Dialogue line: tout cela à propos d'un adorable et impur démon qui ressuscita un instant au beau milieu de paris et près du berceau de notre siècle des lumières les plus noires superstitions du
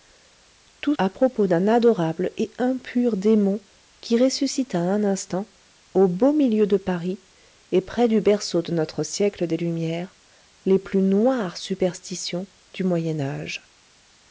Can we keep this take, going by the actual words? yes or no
no